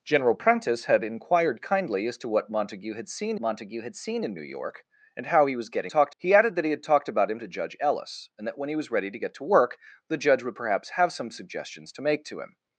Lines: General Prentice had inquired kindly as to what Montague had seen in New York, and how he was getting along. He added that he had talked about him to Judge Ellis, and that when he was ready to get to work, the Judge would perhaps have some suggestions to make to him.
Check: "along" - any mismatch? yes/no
yes